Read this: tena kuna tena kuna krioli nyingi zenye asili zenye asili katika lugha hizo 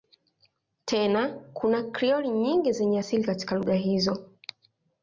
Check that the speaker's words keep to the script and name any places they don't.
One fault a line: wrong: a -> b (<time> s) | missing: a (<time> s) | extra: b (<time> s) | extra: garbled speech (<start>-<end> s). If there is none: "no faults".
missing: tena kuna (1.8 s)
missing: zenye asili (3.2 s)